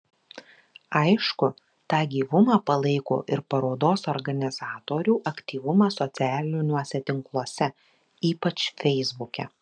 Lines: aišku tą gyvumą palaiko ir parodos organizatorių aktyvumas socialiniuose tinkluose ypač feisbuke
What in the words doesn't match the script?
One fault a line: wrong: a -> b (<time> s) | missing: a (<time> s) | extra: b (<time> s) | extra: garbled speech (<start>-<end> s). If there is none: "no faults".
no faults